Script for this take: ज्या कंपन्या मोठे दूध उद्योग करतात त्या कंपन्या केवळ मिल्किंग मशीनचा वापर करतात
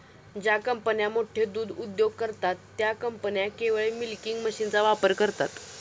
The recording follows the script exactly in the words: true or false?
true